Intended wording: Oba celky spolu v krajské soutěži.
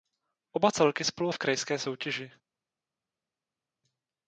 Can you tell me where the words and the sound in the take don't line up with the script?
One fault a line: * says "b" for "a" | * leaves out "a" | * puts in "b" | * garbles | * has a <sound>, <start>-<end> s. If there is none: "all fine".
all fine